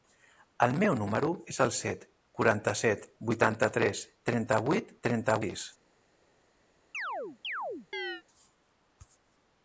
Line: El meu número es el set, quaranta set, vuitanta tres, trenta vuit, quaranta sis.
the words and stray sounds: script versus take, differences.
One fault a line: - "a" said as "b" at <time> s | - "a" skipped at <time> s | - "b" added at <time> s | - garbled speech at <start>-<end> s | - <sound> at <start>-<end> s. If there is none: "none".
- "quaranta" said as "trenta" at 5.1 s
- chirp at 6.9-8.2 s